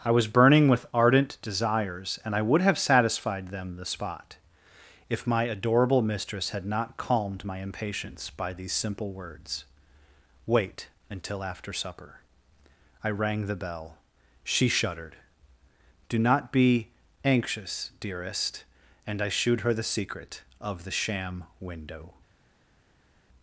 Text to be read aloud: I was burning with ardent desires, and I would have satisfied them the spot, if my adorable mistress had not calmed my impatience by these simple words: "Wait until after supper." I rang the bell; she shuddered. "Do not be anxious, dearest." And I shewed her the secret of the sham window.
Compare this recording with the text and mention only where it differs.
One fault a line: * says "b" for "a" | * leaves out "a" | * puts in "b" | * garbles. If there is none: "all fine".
all fine